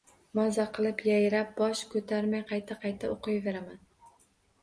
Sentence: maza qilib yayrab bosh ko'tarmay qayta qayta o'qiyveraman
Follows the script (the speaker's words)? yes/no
yes